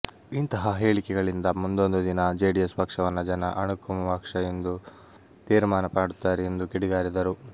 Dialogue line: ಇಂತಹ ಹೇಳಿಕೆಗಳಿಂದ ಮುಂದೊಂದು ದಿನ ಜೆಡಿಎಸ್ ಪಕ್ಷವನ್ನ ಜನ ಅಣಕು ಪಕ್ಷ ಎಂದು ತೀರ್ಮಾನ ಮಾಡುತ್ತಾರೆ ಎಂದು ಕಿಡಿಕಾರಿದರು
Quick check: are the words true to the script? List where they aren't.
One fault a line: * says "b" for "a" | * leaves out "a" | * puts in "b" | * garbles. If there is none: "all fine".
all fine